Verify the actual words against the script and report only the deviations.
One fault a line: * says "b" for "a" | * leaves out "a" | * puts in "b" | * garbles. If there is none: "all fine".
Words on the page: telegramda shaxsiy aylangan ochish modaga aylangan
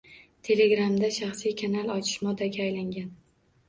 * says "kanal" for "aylangan"